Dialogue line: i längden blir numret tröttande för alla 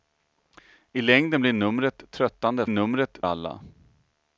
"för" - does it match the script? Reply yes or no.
no